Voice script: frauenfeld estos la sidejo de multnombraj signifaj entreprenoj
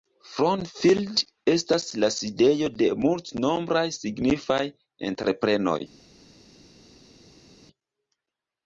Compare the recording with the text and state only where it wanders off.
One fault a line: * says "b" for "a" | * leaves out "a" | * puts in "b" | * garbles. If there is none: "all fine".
* says "estas" for "estos"